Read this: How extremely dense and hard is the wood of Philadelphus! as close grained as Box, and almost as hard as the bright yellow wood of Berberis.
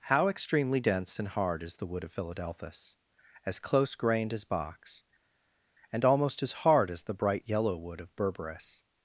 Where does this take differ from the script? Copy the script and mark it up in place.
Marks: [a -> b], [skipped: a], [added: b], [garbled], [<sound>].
How extremely dense and hard is the wood of Philadelphus! as close grained as Box, and almost as hard as the bright yellow wood of Berberis.